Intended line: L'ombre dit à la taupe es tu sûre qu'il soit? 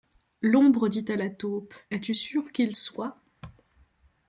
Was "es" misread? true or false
false